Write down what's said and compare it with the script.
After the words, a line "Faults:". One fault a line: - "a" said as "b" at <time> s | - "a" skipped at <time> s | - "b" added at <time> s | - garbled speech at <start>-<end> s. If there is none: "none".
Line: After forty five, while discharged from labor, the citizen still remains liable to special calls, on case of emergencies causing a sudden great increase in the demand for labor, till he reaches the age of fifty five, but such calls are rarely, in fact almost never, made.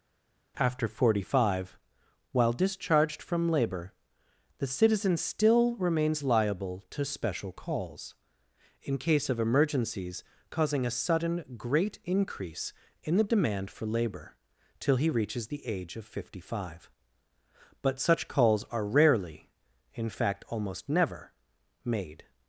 After forty five, while discharged from labor, the citizen still remains liable to special calls, in case of emergencies causing a sudden great increase in the demand for labor, till he reaches the age of fifty five, but such calls are rarely, in fact almost never, made.
Faults:
- "on" said as "in" at 8.8 s